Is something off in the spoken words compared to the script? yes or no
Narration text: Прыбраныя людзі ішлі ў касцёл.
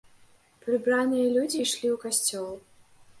no